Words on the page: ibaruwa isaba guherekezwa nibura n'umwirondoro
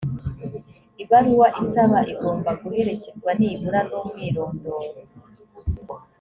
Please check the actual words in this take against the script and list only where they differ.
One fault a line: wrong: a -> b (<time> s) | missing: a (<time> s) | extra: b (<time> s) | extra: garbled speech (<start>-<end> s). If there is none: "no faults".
extra: igomba (2.1 s)